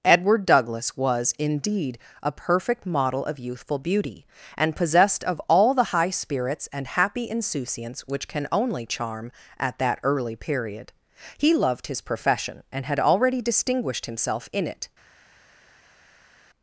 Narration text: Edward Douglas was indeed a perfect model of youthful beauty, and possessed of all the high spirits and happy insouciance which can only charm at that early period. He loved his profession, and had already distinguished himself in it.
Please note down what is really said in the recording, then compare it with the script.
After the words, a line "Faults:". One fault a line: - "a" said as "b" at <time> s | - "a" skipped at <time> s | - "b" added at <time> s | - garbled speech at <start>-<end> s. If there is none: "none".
Edward Douglas was indeed a perfect model of youthful beauty, and possessed of all the high spirits and happy insouciance which can only charm at that early period. He loved his profession, and had already distinguished himself in it.
Faults:
none